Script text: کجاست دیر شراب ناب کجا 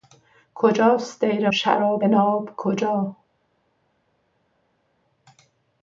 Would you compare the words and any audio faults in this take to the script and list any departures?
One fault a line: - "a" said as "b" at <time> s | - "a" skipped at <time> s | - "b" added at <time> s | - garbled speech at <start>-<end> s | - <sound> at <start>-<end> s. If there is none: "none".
none